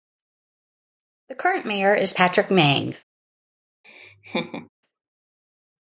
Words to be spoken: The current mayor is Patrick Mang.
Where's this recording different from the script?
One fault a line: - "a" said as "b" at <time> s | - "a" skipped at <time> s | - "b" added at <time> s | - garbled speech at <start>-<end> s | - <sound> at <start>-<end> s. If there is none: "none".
- laugh at 3.8-4.7 s